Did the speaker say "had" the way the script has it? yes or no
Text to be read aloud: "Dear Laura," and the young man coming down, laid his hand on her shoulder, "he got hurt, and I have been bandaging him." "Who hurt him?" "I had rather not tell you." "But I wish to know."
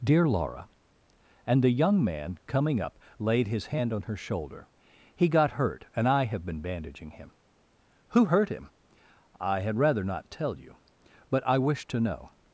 yes